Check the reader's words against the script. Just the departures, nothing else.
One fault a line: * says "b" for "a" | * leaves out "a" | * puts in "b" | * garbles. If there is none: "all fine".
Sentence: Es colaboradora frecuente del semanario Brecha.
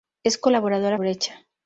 * leaves out "frecuente del semanario"